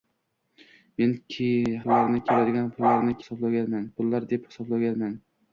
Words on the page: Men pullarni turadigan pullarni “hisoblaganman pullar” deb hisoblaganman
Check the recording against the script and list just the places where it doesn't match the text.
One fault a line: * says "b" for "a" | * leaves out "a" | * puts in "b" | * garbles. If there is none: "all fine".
all fine